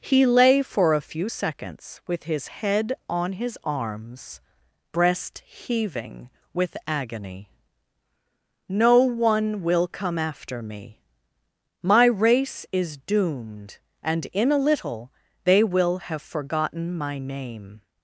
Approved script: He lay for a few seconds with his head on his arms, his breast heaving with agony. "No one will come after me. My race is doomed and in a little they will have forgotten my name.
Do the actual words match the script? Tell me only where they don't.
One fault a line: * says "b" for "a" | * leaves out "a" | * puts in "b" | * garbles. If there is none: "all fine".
* leaves out "his"